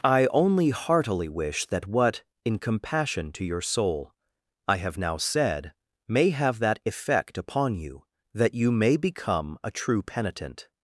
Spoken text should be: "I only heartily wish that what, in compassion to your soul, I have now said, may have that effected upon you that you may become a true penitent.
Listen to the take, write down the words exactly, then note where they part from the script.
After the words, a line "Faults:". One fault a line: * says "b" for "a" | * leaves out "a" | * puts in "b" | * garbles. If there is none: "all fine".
"I only heartily wish that what, in compassion to your soul, I have now said, may have that effect upon you that you may become a true penitent.
Faults:
* says "effect" for "effected"